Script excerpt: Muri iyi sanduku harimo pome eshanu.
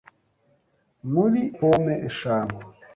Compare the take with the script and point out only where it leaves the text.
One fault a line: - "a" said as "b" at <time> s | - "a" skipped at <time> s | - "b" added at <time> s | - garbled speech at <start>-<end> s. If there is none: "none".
- "iyi sanduku harimo" skipped at 1.4 s